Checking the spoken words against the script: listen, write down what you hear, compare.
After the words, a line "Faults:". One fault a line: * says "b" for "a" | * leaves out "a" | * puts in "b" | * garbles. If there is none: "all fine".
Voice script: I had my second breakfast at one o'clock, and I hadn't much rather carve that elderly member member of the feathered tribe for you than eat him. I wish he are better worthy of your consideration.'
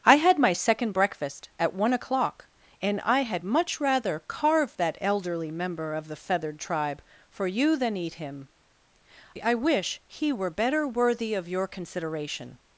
I had my second breakfast at one o'clock, and I had much rather carve that elderly member of the feathered tribe for you than eat him. I wish he were better worthy of your consideration.'
Faults:
* says "had" for "hadn't"
* leaves out "member"
* says "were" for "are"